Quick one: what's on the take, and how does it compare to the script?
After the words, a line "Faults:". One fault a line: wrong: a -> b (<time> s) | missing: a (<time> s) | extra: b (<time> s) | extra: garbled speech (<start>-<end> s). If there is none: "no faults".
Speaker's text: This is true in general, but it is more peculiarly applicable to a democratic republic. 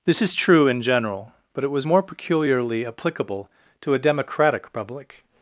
This is true in general, but it was more peculiarly applicable to a democratic republic.
Faults:
wrong: is -> was (1.7 s)